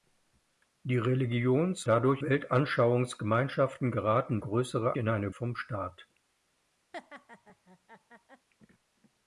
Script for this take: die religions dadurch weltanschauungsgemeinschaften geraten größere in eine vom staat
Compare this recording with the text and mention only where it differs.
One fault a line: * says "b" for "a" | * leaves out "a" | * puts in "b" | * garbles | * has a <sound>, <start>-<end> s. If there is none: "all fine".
* has a laugh, 6.9-8.5 s